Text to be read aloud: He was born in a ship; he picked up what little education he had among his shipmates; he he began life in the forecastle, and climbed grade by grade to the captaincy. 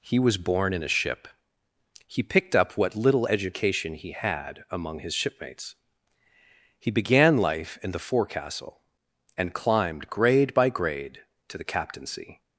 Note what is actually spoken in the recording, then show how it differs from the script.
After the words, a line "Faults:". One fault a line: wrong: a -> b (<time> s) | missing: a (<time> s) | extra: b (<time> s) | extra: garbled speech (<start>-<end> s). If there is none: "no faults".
He was born in a ship; he picked up what little education he had among his shipmates; he began life in the forecastle, and climbed grade by grade to the captaincy.
Faults:
missing: he (6.9 s)